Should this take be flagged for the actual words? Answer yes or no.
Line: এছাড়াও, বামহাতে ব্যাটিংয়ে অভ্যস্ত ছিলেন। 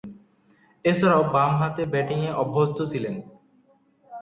no